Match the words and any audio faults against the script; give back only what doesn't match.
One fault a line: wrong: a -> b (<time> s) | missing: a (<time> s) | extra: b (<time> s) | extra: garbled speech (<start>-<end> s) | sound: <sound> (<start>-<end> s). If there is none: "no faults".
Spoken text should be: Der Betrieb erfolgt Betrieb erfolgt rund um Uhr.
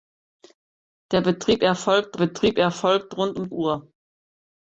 no faults